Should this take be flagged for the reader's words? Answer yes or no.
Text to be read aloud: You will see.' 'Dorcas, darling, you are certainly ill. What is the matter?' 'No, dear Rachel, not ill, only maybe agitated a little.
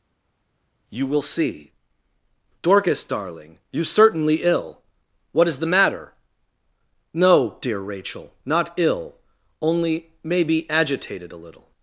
yes